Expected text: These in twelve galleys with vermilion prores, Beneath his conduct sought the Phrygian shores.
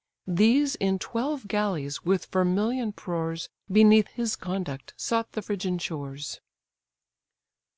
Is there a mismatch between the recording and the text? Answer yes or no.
no